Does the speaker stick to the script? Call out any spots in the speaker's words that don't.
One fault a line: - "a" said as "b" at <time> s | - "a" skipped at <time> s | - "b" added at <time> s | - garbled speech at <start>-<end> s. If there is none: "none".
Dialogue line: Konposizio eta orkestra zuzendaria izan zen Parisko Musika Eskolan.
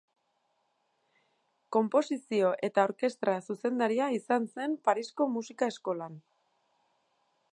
none